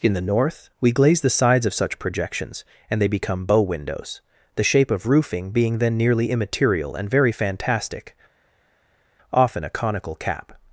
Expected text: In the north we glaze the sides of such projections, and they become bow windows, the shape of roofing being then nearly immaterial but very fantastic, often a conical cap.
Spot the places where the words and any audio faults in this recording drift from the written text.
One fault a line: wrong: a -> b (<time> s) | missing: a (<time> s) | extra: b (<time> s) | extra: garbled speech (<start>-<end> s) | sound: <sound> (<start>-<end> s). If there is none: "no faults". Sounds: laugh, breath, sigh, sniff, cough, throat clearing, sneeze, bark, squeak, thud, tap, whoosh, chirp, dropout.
wrong: but -> and (7.0 s)